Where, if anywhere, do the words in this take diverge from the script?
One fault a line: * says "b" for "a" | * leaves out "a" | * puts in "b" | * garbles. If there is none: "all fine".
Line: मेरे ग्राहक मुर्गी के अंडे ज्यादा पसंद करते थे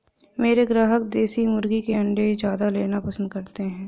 * puts in "देसी"
* puts in "लेना"
* says "हैं" for "थे"